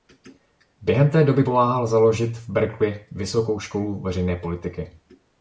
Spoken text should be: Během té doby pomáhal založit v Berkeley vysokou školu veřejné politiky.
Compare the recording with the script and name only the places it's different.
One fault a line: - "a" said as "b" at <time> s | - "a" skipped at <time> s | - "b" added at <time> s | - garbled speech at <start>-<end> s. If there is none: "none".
none